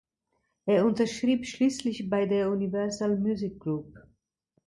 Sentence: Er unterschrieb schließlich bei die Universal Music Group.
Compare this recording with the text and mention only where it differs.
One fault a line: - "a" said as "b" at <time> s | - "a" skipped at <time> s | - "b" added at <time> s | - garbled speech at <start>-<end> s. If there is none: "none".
- "die" said as "der" at 2.2 s